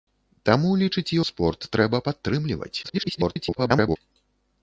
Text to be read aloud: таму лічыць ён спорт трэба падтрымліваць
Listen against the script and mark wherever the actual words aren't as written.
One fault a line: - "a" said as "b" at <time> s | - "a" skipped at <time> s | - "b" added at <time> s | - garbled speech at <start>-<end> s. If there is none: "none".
- "ён" skipped at 1.1 s
- garbled speech at 2.8-4.0 s